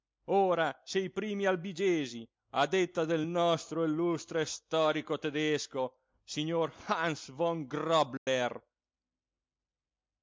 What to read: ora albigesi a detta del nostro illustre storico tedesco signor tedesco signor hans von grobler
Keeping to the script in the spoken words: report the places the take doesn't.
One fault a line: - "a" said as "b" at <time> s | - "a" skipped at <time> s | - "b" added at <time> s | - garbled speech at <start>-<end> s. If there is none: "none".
- "se i primi" added at 0.8 s
- "tedesco signor" skipped at 6.7 s